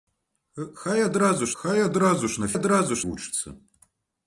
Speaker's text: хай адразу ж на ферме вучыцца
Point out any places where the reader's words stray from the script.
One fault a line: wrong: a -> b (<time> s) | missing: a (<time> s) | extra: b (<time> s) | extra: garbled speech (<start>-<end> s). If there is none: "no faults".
extra: хай адразу (1.6 s)
wrong: ферме -> адразу (2.6 s)